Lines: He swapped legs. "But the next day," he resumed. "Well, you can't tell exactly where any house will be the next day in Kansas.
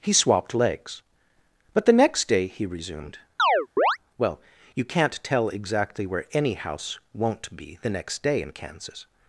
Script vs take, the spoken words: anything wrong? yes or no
yes